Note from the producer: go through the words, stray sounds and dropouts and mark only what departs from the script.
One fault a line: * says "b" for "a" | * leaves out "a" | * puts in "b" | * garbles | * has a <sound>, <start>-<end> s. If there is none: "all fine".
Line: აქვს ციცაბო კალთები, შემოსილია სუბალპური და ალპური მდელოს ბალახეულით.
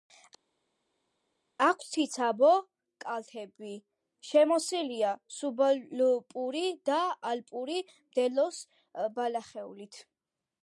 all fine